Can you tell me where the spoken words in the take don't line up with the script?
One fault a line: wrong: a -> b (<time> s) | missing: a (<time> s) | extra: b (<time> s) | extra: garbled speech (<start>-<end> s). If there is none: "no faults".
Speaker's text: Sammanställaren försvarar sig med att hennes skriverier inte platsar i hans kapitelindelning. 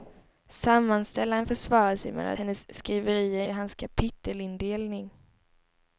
missing: att (2.3 s)
missing: inte platsar (3.4 s)